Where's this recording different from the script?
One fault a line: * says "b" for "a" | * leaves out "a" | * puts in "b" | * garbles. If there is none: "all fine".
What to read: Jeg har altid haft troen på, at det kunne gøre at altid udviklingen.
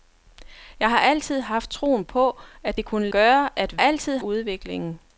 all fine